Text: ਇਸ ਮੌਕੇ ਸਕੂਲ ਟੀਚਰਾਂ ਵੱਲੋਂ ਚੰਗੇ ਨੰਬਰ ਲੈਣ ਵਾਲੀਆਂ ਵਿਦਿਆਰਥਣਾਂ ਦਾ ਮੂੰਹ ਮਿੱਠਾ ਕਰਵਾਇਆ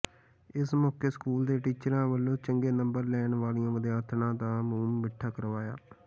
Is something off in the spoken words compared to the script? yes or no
yes